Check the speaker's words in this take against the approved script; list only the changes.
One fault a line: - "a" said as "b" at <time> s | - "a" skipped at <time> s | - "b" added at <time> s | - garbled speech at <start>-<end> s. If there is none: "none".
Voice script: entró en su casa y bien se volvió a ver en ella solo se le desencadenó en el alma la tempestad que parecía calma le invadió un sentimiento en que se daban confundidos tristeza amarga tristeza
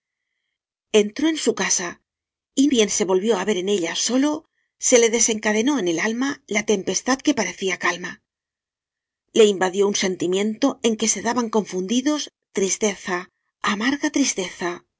none